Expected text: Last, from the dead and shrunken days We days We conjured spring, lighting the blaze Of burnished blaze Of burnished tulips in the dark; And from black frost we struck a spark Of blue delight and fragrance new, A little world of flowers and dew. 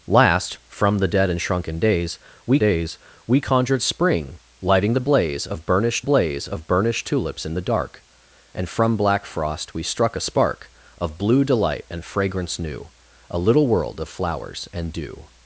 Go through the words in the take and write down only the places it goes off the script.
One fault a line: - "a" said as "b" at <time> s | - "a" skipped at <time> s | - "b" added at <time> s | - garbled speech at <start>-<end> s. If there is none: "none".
none